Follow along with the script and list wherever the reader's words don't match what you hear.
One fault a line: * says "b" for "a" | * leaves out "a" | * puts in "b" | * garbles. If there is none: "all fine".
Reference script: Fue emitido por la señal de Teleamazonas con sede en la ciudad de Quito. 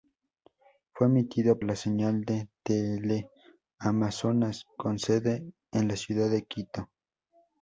* leaves out "por"